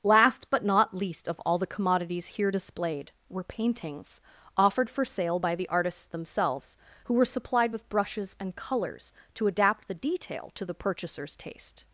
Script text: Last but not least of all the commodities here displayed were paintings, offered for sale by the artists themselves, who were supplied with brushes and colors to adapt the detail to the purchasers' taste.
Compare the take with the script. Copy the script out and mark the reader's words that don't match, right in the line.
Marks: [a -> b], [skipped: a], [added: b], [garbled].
Last but not least of all the commodities here displayed were paintings, offered for sale by the artists themselves, who were supplied with brushes and colors to adapt the detail to the purchasers' taste.